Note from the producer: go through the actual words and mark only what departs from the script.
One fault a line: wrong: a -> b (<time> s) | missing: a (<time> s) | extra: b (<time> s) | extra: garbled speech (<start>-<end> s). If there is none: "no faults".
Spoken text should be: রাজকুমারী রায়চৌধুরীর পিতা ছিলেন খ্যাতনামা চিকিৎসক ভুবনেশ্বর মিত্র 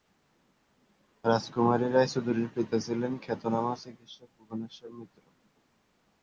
no faults